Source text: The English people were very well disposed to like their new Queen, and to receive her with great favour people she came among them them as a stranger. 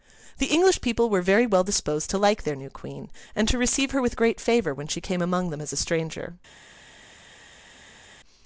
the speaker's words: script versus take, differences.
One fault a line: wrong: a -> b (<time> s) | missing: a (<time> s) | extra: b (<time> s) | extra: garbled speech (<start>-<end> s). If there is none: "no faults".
wrong: people -> when (4.7 s)
missing: them (5.6 s)